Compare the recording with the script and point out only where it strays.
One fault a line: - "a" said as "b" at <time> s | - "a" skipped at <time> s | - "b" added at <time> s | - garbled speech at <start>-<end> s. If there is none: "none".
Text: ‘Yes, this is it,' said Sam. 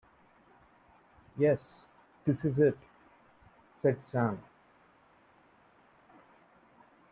none